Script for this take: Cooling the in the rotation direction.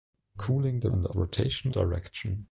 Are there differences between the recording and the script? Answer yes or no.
no